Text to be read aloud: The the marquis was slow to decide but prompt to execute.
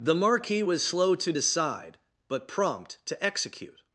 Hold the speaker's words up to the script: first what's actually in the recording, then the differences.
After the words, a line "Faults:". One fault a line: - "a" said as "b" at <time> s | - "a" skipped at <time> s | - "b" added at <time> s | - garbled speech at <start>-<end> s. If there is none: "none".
The marquis was slow to decide but prompt to execute.
Faults:
- "the" skipped at 0.1 s